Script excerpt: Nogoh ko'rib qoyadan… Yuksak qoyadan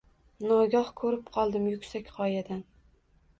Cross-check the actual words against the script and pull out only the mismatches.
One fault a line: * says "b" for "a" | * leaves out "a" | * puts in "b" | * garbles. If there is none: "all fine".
* says "qoldim" for "qoyadan"